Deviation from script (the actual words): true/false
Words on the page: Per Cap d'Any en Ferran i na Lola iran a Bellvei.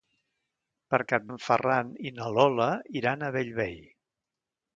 true